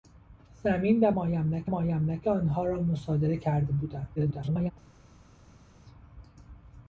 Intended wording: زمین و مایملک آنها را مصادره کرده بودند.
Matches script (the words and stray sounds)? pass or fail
fail